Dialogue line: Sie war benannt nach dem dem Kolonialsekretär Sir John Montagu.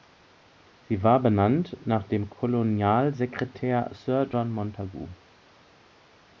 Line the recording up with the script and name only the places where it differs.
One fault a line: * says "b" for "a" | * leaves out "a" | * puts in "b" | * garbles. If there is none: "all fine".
* leaves out "dem"